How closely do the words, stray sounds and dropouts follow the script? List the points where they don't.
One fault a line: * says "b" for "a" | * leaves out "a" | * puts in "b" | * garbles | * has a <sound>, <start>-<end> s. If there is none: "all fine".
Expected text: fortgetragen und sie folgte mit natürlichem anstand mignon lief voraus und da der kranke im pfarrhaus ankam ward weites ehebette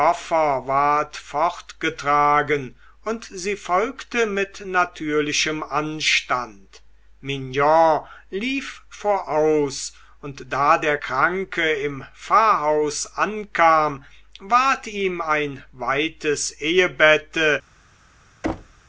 * puts in "ihm ein"
* has a thud, 18.4-18.8 s